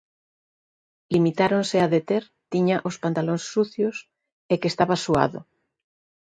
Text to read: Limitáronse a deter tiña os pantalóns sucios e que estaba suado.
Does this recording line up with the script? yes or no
yes